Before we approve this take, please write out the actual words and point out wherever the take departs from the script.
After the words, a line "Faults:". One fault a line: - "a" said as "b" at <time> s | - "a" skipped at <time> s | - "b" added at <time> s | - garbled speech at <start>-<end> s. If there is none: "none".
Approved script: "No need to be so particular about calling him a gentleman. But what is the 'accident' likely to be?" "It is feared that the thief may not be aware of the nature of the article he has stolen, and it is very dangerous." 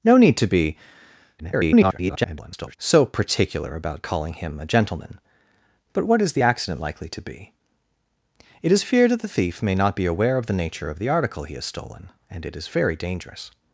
"No need to be [garbled] so particular about calling him a gentleman. But what is the 'accident' likely to be?" "It is feared that the thief may not be aware of the nature of the article he has stolen, and it is very dangerous."
Faults:
- garbled speech at 1.4-2.8 s